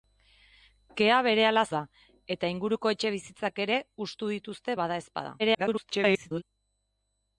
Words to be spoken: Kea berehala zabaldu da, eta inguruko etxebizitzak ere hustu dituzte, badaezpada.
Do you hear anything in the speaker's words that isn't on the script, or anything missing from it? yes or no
yes